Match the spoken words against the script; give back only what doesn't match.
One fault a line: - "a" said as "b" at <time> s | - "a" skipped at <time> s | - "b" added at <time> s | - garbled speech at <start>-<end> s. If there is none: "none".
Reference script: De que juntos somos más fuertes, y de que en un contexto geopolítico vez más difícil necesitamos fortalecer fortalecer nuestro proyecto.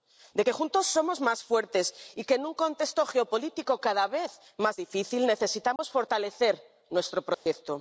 - "cada" added at 3.9 s
- "fortalecer" skipped at 6.5 s